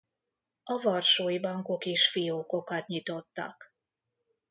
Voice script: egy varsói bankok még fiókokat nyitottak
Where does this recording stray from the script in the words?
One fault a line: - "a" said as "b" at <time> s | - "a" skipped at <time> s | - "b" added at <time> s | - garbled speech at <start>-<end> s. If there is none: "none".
- "egy" said as "a" at 0.6 s
- "még" said as "is" at 1.9 s